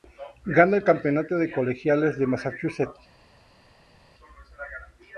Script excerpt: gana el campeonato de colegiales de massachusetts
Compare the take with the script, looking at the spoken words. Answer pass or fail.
pass